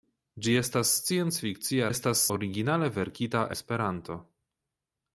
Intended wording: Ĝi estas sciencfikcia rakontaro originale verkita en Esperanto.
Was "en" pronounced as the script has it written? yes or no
no